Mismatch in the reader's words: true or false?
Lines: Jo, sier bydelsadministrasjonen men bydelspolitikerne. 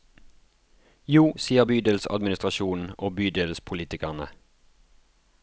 true